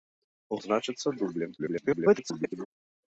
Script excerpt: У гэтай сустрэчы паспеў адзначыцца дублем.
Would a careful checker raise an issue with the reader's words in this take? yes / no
yes